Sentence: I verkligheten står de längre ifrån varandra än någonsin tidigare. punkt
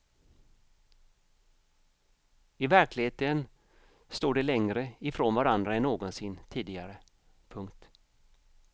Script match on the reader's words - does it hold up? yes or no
yes